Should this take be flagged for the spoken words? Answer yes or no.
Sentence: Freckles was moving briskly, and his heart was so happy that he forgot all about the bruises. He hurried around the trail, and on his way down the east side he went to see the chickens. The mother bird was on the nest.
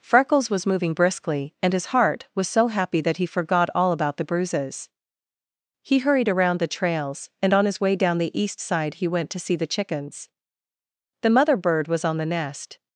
yes